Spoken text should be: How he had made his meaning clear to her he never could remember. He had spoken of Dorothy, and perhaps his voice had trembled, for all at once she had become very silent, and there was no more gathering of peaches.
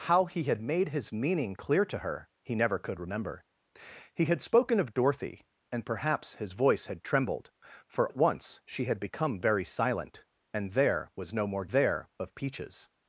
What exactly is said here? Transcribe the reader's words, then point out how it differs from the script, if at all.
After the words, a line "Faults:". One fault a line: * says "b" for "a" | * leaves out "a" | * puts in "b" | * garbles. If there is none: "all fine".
How he had made his meaning clear to her he never could remember. He had spoken of Dorothy, and perhaps his voice had trembled, for at once she had become very silent, and there was no more there of peaches.
Faults:
* leaves out "all"
* says "there" for "gathering"